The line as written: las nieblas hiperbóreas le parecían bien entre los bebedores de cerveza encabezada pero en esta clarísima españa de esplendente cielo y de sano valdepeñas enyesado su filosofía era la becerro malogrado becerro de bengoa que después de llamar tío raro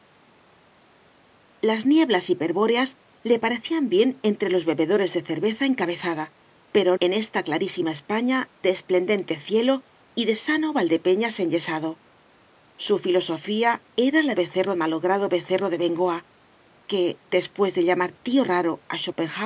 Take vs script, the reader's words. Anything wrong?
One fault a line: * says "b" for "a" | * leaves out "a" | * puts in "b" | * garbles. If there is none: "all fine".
all fine